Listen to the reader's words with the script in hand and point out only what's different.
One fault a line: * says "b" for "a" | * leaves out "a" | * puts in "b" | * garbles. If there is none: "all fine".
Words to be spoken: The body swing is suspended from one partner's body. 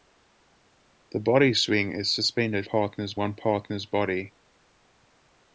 * says "partner's" for "from"